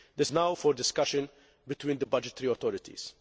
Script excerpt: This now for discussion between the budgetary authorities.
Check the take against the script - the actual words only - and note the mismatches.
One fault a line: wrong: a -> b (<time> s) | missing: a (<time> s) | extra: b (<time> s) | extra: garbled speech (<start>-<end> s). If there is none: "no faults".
no faults